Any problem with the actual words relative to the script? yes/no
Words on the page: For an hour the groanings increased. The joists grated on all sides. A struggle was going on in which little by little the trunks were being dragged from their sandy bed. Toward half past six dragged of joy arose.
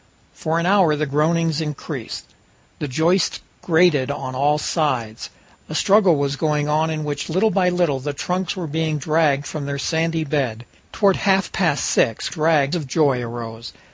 no